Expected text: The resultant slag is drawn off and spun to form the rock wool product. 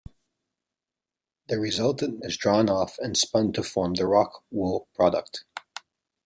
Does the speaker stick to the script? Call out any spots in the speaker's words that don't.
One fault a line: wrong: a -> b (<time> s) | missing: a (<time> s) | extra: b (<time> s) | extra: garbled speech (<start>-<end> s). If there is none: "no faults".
missing: slag (2.2 s)